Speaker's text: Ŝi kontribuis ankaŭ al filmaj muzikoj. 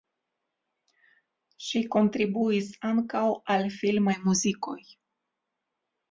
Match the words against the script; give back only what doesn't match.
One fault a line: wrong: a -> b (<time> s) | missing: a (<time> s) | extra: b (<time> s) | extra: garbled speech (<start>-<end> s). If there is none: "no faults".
no faults